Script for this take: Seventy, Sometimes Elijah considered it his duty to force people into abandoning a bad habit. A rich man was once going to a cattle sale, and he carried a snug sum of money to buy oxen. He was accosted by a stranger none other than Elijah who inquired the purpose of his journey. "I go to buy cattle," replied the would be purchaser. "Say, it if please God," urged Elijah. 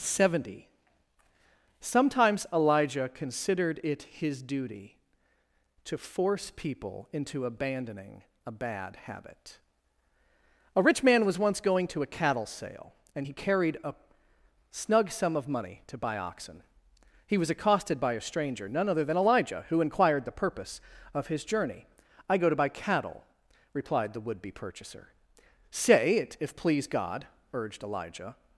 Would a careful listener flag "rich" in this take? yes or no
no